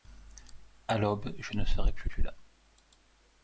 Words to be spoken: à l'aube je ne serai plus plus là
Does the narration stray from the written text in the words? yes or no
no